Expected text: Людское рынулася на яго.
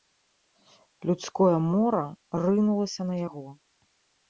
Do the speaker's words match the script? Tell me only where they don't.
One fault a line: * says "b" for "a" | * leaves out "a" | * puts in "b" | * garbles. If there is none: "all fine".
* puts in "мора"